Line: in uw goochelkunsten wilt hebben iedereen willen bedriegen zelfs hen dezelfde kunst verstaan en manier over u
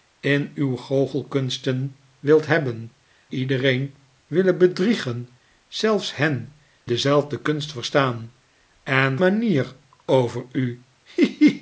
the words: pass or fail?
pass